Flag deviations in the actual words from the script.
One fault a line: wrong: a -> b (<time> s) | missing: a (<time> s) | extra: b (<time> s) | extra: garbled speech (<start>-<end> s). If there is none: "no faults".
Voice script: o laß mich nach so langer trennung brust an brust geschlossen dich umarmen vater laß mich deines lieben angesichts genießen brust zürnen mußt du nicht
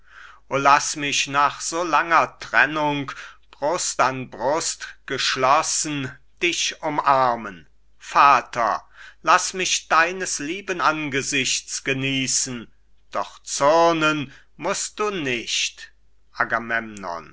wrong: brust -> doch (13.1 s)